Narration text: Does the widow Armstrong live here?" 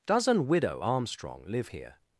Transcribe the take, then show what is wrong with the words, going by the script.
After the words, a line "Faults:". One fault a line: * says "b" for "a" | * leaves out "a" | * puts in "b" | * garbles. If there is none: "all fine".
Does an widow Armstrong live here?"
Faults:
* says "an" for "the"